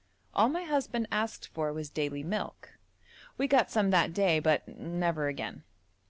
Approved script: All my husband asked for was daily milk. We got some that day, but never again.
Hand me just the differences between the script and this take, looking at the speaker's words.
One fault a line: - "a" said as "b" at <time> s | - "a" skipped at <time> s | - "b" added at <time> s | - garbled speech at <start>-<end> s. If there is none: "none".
none